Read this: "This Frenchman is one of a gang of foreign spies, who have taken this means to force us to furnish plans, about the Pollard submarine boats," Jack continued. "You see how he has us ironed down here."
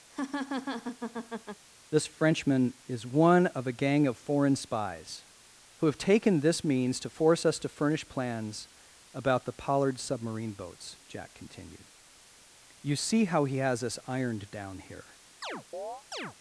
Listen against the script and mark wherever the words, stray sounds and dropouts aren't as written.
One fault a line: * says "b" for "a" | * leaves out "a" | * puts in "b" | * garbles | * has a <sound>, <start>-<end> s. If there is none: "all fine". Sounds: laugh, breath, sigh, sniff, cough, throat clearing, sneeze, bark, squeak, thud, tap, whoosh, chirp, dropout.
* has a laugh, 0.1-1.6 s
* has a chirp, 15.4-16.3 s